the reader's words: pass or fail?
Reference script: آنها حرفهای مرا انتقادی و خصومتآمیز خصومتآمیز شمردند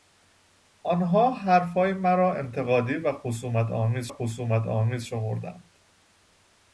pass